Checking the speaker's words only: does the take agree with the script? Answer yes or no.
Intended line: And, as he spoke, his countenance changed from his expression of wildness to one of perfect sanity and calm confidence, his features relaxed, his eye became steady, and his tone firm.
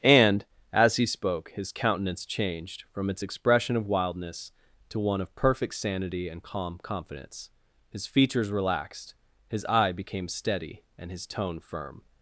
no